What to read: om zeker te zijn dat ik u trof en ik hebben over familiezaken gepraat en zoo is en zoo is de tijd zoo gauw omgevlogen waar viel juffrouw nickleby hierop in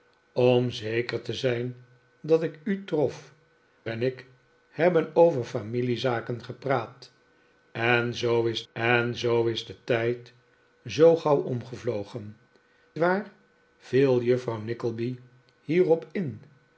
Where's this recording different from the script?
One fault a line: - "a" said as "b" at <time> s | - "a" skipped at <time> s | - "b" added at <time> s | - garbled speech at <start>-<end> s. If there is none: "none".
none